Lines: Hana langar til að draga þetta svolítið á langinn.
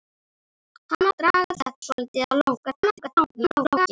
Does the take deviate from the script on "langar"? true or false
true